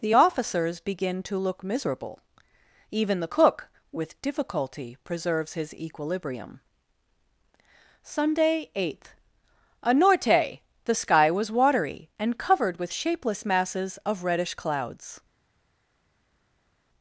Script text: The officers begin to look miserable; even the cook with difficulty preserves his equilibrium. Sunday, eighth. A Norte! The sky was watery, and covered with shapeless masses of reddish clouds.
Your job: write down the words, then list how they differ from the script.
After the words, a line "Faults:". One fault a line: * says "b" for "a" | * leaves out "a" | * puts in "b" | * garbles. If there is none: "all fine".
The officers begin to look miserable; even the cook with difficulty preserves his equilibrium. Sunday, eighth. A Norte! The sky was watery, and covered with shapeless masses of reddish clouds.
Faults:
all fine